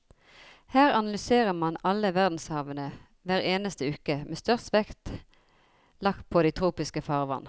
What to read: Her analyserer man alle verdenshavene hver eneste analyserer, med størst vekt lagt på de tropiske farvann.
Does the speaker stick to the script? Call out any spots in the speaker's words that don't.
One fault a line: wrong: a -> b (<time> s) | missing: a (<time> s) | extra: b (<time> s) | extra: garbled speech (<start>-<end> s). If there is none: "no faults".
wrong: analyserer -> uke (3.9 s)